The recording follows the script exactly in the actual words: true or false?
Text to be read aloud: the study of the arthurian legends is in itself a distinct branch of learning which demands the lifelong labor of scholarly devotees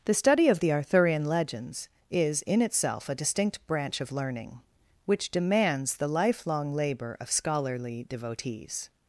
true